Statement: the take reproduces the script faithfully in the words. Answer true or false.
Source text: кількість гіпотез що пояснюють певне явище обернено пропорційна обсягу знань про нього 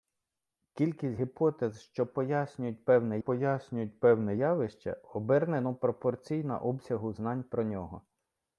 false